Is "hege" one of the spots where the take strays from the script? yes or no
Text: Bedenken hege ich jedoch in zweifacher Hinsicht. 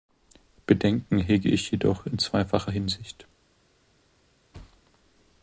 no